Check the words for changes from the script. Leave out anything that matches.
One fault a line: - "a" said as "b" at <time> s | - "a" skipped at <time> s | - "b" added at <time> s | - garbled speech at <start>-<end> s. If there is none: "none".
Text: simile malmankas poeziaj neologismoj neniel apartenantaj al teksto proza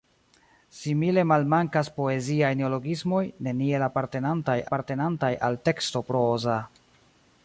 - "apartenantaj" added at 4.7 s